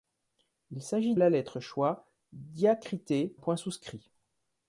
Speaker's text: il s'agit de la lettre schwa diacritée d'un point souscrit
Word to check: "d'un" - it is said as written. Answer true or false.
false